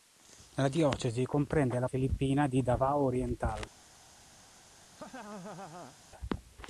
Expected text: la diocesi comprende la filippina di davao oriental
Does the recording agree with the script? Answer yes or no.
yes